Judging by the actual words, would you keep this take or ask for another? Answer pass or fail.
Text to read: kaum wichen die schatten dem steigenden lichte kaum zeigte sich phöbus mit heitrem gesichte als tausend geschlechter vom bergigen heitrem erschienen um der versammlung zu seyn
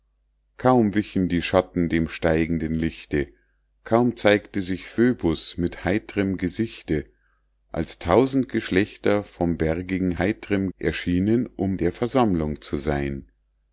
pass